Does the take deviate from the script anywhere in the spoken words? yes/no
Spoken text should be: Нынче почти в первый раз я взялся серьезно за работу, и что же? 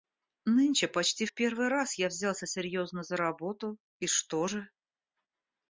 no